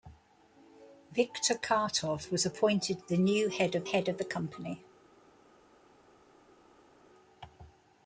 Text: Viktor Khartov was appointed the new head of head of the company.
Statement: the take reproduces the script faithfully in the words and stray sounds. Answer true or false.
true